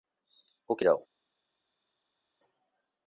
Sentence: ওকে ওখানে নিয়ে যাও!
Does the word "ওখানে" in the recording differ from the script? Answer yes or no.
yes